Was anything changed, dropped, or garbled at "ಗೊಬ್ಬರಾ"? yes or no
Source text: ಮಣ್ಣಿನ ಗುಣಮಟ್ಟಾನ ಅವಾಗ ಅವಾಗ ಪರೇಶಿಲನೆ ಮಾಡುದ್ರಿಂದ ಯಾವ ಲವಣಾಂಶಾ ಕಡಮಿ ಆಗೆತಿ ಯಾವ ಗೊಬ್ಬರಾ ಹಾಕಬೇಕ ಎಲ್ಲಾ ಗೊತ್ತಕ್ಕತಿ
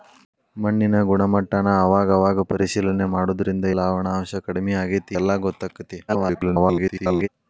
yes